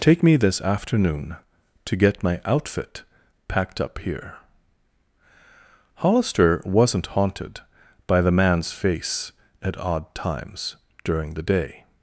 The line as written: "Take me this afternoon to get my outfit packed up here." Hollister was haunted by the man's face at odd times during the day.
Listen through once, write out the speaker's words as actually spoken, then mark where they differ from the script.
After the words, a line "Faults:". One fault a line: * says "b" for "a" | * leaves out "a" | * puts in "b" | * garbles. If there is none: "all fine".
"Take me this afternoon to get my outfit packed up here." Hollister wasn't haunted by the man's face at odd times during the day.
Faults:
* says "wasn't" for "was"